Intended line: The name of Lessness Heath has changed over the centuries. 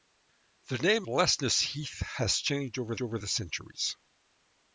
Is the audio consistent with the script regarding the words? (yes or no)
no